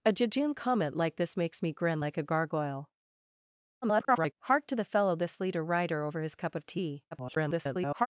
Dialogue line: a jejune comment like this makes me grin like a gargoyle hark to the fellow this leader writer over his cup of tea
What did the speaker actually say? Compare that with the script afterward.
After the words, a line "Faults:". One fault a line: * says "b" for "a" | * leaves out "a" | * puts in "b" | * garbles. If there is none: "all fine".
a jejune comment like this makes me grin like a gargoyle [garbled] hark to the fellow this leader writer over his cup of tea [garbled]
Faults:
* garbles
* garbles